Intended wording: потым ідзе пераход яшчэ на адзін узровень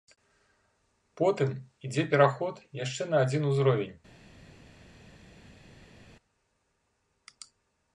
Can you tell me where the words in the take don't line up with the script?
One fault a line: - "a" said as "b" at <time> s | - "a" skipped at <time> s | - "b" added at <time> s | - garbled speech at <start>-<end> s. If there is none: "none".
none